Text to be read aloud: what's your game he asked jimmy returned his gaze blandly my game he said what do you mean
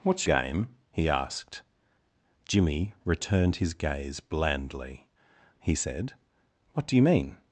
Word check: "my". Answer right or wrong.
wrong